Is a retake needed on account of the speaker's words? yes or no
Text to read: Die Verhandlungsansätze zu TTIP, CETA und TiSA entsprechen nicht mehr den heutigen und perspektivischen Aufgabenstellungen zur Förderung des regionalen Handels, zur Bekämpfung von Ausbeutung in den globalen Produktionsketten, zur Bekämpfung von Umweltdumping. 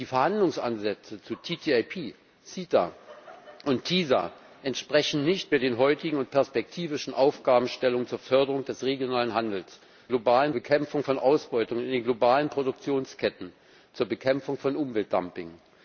yes